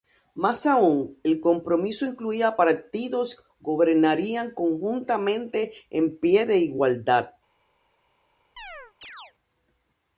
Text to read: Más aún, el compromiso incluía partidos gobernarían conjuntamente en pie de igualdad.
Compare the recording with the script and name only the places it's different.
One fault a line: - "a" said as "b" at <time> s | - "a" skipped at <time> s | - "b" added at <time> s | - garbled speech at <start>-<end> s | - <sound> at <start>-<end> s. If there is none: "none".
- chirp at 8.6-9.3 s